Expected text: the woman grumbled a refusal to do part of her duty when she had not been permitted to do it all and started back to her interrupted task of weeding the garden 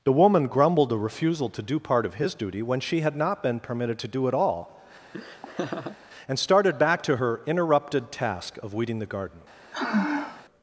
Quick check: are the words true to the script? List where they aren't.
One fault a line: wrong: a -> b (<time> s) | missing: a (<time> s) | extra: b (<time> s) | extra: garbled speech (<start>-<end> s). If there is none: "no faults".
wrong: her -> his (2.1 s)